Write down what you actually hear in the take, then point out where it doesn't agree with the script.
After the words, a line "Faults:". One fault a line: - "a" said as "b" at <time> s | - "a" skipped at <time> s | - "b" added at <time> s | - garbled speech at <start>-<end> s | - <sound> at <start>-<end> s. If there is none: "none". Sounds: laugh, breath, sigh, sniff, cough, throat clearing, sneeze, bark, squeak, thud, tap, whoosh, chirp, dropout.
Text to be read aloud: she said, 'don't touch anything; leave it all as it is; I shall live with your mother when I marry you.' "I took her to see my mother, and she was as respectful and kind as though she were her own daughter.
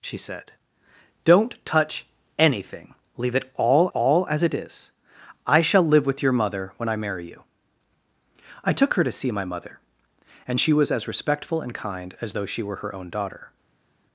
she said, 'don't touch anything; leave it all all as it is; I shall live with your mother when I marry you.' "I took her to see my mother, and she was as respectful and kind as though she were her own daughter.
Faults:
- "all" added at 3.9 s